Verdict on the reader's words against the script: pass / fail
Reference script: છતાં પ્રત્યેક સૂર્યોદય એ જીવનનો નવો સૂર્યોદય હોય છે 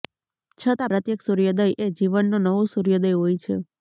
pass